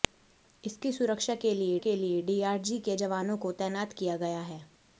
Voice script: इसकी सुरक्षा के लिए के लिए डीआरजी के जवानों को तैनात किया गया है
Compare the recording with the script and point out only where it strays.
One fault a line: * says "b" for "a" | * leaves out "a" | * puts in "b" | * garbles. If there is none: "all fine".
all fine